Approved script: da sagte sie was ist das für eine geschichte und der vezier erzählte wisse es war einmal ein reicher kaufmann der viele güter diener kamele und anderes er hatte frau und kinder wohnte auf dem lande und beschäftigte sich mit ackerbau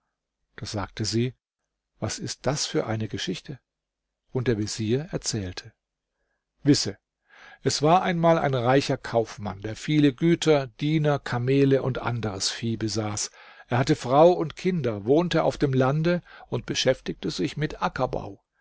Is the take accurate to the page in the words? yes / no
no